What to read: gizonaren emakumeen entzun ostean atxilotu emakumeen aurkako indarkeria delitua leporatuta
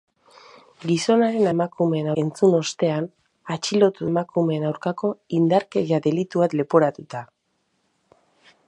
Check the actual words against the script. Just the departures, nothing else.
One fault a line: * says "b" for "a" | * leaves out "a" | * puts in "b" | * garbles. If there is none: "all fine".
all fine